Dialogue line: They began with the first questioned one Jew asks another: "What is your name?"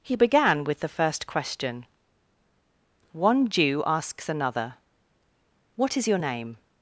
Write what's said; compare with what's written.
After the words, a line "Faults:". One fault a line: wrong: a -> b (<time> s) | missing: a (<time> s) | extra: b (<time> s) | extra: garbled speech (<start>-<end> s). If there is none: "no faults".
He began with the first question one Jew asks another: "What is your name?"
Faults:
wrong: They -> He (0.0 s)
wrong: questioned -> question (1.3 s)